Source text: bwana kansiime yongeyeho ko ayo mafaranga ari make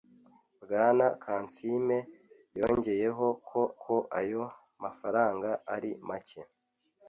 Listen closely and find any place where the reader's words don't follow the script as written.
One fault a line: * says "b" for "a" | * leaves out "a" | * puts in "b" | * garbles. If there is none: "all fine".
* puts in "ko"